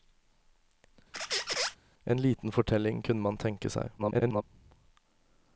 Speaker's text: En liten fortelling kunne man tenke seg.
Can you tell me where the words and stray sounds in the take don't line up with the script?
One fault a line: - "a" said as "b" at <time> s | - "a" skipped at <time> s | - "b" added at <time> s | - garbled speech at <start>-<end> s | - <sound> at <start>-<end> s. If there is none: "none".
- squeak at 1.1-1.8 s
- garbled speech at 4.0-4.4 s